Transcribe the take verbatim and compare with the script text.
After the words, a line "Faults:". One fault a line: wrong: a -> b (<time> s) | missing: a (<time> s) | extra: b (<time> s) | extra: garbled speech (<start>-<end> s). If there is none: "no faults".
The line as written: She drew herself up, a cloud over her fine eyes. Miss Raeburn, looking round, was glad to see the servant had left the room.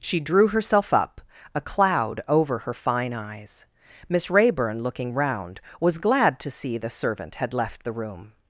She drew herself up, a cloud over her fine eyes. Miss Raeburn, looking round, was glad to see the servant had left the room.
Faults:
no faults